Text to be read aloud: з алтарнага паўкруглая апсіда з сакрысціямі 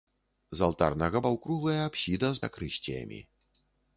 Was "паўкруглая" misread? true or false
false